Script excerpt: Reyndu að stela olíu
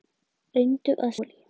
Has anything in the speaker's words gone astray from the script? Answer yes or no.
yes